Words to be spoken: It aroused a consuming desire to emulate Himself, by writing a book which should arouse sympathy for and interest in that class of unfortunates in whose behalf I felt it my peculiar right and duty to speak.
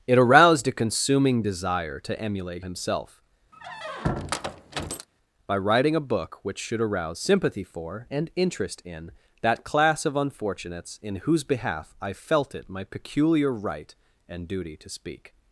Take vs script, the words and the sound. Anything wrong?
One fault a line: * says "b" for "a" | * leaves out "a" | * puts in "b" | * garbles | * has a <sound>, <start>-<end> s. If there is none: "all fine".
* has a squeak, 3.5-5.1 s